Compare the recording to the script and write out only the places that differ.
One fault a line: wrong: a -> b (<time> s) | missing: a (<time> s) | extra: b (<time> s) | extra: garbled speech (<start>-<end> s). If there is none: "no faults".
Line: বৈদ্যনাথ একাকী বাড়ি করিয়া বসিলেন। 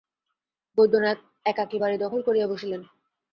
extra: দখল (2.0 s)